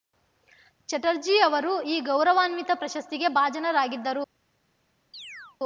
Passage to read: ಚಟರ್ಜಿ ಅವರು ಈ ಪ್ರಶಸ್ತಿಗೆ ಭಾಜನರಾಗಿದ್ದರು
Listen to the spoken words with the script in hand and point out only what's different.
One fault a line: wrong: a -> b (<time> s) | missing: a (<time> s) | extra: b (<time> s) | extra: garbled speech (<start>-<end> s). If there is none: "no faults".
extra: ಗೌರವಾನ್ವಿತ (2.0 s)